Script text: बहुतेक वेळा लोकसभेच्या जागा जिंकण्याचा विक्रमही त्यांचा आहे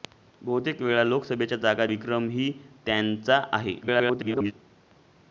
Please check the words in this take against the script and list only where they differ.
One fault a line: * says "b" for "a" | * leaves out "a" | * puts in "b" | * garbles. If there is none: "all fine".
* leaves out "जिंकण्याचा"
* garbles